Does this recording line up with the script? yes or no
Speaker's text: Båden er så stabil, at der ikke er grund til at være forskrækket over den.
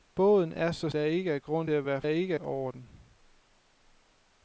no